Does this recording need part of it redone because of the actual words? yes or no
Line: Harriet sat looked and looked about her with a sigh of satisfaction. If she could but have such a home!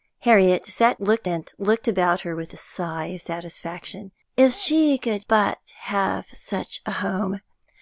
no